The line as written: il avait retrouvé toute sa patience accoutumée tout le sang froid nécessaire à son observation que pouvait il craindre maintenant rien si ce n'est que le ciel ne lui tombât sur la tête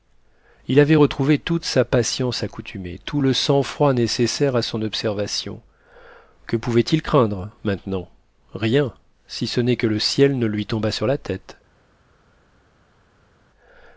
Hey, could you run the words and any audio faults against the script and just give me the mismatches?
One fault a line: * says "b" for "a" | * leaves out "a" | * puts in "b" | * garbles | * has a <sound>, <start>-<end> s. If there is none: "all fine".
all fine